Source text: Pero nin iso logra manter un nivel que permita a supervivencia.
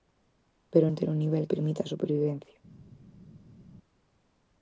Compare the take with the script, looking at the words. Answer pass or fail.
fail